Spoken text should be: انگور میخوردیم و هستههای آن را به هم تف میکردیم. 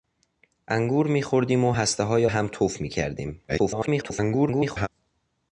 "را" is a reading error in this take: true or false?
true